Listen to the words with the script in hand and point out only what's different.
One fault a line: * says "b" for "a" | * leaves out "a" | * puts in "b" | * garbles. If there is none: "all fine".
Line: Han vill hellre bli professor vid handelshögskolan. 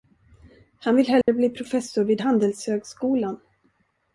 all fine